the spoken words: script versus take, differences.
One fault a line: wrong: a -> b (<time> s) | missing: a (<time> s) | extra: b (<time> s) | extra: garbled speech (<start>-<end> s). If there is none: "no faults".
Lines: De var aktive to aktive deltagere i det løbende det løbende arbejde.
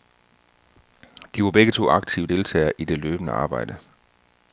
wrong: aktive -> begge (1.5 s)
missing: det løbende (3.3 s)